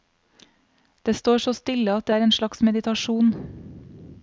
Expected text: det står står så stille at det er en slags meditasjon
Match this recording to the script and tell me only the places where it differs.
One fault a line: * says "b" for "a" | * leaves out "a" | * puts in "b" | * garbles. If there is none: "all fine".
* leaves out "står"